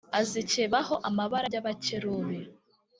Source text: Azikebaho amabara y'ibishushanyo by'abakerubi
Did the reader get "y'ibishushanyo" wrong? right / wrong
wrong